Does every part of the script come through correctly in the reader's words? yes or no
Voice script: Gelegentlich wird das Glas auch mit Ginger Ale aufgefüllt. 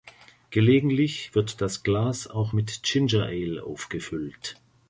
yes